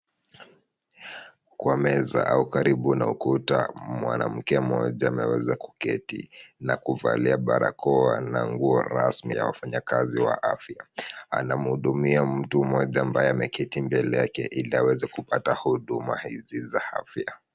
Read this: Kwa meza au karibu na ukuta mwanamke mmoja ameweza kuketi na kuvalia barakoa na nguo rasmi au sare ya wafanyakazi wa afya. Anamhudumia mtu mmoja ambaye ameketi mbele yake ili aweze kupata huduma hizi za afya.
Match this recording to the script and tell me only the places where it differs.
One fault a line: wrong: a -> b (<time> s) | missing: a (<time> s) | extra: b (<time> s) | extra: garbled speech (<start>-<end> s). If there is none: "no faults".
missing: au sare (9.3 s)